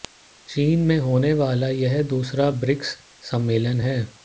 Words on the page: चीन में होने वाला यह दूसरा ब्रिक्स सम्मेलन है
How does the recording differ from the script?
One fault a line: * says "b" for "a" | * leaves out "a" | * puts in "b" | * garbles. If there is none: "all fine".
all fine